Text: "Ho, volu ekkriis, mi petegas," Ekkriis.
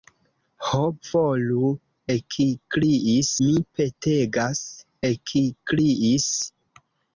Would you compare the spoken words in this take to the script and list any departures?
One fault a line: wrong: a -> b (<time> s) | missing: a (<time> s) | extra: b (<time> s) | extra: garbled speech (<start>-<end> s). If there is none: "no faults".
no faults